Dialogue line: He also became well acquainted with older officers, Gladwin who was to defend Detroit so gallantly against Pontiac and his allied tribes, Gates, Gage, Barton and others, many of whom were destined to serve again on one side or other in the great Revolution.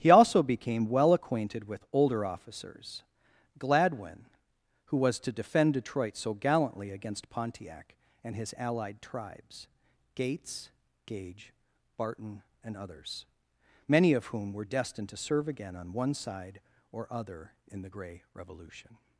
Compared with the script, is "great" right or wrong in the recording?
wrong